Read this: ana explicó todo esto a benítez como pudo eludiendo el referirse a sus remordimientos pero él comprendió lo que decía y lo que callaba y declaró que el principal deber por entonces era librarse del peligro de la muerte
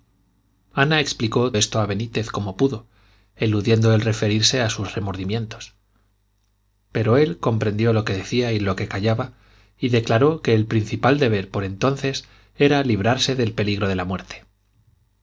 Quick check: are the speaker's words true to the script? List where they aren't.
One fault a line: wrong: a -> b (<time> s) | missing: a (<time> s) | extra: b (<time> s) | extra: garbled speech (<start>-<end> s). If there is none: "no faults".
missing: todo (1.5 s)